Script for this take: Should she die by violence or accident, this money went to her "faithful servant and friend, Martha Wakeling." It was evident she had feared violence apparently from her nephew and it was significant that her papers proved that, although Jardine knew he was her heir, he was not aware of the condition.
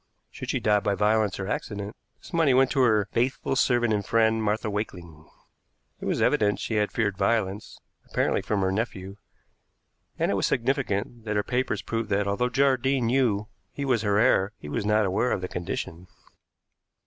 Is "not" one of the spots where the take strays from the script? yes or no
no